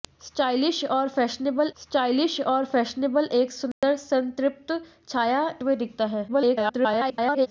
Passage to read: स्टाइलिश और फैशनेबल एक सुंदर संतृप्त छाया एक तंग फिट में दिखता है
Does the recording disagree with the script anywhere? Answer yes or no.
yes